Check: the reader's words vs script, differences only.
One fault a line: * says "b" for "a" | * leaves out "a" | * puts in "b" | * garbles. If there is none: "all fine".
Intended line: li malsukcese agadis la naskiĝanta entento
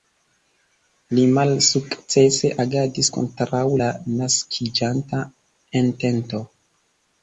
* puts in "kontraŭ"